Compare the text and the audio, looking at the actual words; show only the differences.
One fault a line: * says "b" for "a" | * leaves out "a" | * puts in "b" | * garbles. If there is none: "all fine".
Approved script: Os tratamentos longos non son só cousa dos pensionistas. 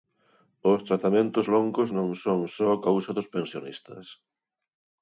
all fine